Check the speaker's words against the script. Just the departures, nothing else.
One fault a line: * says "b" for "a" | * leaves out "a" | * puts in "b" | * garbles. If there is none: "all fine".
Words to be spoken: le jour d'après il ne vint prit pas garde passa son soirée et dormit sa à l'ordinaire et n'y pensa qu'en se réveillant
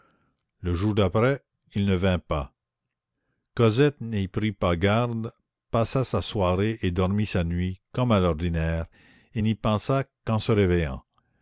* puts in "pas cosette n'y"
* says "sa" for "son"
* puts in "nuit comme"